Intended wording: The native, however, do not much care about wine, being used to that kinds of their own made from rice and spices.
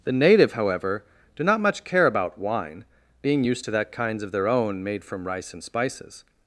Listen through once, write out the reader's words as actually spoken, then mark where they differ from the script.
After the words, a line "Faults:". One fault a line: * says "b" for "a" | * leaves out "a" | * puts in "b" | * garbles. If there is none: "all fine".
The native, however, do not much care about wine, being used to that kinds of their own made from rice and spices.
Faults:
all fine